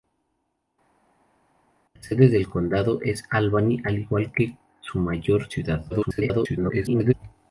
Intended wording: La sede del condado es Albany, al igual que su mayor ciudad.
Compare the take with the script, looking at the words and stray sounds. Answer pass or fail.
fail